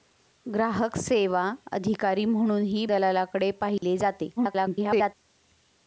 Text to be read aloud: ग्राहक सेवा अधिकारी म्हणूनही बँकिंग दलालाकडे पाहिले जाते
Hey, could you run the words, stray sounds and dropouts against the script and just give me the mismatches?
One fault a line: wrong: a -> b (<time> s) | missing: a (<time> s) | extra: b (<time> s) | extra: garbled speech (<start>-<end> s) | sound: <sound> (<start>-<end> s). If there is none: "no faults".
missing: बँकिंग (2.9 s)
sound: dropout (3.8-3.8 s)
extra: garbled speech (4.4-5.1 s)